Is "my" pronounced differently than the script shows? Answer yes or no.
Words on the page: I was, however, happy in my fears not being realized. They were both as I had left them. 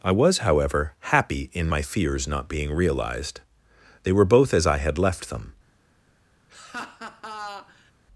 no